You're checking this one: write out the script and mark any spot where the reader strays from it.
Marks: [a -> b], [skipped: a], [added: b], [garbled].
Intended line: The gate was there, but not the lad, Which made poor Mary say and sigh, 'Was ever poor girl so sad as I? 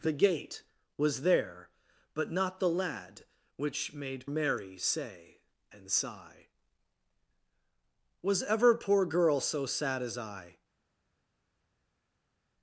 The gate was there, but not the lad, Which made [skipped: poor] Mary say and sigh, 'Was ever poor girl so sad as I?